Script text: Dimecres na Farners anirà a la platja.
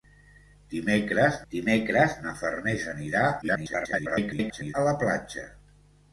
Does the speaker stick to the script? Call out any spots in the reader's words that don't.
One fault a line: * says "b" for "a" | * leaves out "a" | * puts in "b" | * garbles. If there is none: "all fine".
* puts in "dimecres"
* garbles